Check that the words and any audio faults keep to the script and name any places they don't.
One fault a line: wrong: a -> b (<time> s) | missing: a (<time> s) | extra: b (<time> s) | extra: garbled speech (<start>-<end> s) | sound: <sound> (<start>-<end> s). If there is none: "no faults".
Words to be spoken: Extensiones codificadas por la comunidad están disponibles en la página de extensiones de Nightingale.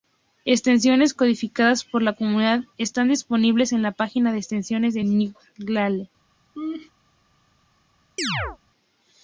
sound: laugh (6.5-6.9 s)
sound: chirp (8.2-8.6 s)